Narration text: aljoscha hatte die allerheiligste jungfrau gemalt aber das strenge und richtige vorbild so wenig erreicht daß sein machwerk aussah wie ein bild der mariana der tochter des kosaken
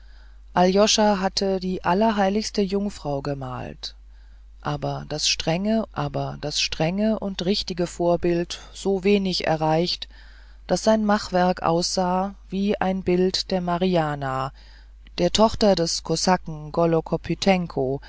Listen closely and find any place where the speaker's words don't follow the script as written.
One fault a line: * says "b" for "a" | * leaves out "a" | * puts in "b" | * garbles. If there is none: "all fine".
* puts in "aber das strenge"